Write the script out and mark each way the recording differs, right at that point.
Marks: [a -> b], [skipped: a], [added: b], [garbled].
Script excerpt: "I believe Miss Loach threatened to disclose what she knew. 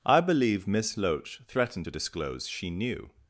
"I believe Miss Loach threatened to disclose [skipped: what] she knew.